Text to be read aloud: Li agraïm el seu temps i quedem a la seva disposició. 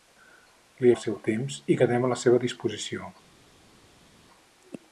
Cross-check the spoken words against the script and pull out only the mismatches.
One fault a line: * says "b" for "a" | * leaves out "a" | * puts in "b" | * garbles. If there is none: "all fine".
* leaves out "agraïm"